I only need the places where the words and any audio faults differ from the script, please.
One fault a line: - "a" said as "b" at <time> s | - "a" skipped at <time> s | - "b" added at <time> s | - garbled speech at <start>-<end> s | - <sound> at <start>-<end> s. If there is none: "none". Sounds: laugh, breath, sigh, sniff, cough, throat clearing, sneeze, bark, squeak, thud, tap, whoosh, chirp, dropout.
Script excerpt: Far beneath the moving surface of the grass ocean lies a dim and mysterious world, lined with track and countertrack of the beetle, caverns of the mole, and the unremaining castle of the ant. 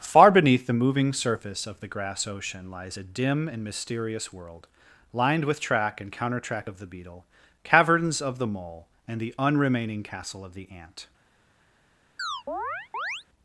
- chirp at 12.2-13.2 s